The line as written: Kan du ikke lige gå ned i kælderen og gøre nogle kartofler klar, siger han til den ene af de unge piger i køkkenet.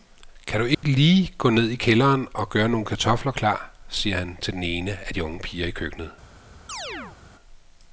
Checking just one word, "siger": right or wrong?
right